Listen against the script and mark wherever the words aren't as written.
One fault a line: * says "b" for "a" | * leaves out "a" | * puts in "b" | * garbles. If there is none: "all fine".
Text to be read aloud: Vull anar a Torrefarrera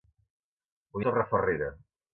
* leaves out "anar"